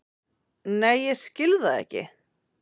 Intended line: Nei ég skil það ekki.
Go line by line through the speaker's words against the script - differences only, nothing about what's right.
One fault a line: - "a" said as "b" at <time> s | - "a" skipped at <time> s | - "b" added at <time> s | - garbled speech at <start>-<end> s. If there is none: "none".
none